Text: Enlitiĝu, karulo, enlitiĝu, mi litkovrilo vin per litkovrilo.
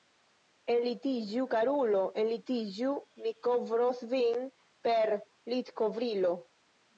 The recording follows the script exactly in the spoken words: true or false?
false